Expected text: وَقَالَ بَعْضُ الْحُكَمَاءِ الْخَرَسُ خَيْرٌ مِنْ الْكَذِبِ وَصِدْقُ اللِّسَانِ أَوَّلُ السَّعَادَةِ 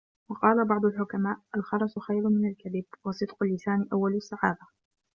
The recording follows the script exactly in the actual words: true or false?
true